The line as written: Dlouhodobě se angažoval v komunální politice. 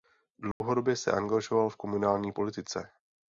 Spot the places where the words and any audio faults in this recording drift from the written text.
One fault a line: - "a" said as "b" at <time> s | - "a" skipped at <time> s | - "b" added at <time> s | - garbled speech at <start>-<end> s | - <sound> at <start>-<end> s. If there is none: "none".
- dropout at 0.5-0.6 s